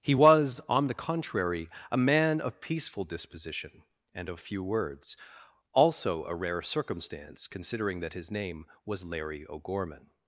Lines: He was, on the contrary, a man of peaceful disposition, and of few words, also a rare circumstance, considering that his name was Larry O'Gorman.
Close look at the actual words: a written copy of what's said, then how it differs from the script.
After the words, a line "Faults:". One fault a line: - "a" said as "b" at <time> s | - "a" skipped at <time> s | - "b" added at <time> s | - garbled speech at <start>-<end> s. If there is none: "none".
He was, on the contrary, a man of peaceful disposition, and of few words, also a rare circumstance, considering that his name was Larry O'Gorman.
Faults:
none